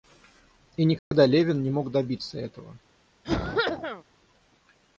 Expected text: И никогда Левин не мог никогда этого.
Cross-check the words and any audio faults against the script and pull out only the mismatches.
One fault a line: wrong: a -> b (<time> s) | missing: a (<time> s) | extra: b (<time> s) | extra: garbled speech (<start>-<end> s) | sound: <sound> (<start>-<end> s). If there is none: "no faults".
sound: dropout (1.0-1.1 s)
wrong: никогда -> добиться (1.9 s)
sound: cough (3.2-4.0 s)